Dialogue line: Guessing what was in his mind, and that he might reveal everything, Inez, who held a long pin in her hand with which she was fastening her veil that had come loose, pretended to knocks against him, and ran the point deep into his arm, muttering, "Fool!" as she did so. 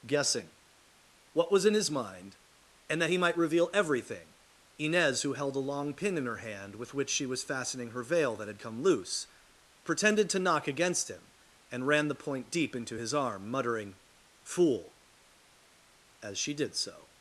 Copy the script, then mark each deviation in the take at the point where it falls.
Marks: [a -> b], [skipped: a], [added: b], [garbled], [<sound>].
Guessing what was in his mind, and that he might reveal everything, Inez, who held a long pin in her hand with which she was fastening her veil that had come loose, pretended to [knocks -> knock] against him, and ran the point deep into his arm, muttering, "Fool!" as she did so.